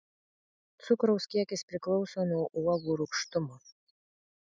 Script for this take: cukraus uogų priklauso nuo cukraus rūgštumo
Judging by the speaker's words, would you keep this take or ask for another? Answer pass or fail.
fail